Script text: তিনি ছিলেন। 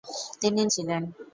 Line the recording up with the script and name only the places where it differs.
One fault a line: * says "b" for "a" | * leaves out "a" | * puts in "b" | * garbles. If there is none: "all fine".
all fine